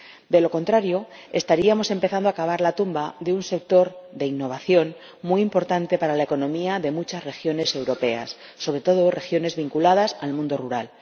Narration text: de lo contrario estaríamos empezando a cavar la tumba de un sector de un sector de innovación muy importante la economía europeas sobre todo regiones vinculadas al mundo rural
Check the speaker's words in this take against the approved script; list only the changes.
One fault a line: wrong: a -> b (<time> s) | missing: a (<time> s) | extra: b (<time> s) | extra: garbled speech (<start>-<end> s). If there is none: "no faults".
missing: un sector de (4.2 s)
extra: para (6.0 s)
extra: de muchas regiones (6.8 s)